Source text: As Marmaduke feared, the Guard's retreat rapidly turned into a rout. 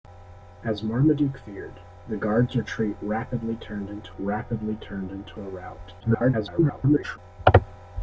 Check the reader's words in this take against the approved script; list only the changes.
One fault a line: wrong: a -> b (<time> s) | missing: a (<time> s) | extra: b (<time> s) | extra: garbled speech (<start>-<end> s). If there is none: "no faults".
extra: rapidly turned into (4.2 s)
extra: garbled speech (6.0-7.2 s)